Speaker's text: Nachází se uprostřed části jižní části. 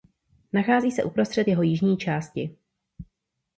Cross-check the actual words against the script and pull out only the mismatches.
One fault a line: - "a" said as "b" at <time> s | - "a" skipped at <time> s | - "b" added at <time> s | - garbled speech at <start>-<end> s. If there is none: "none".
- "části" said as "jeho" at 1.5 s